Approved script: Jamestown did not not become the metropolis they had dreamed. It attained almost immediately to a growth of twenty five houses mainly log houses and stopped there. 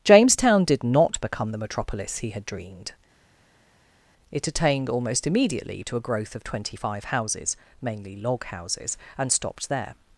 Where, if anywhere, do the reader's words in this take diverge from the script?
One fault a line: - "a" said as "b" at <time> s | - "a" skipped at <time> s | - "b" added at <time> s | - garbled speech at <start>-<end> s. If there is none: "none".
- "not" skipped at 1.2 s
- "they" said as "he" at 2.2 s